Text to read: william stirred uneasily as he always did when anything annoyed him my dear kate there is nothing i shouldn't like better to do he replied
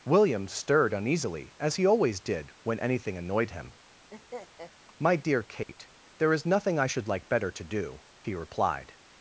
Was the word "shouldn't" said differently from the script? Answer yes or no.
yes